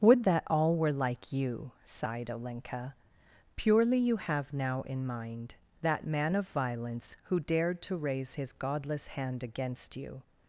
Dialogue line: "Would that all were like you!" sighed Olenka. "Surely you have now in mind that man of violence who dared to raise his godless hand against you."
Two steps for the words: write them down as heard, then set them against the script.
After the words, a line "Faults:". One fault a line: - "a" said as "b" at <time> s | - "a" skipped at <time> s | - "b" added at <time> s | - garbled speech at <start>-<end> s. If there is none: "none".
"Would that all were like you!" sighed Olenka. "Purely you have now in mind that man of violence who dared to raise his godless hand against you."
Faults:
- "Surely" said as "Purely" at 3.5 s